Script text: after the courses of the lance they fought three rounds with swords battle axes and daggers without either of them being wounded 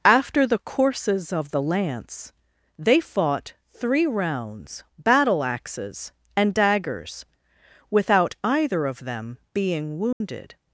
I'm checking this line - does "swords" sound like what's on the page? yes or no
no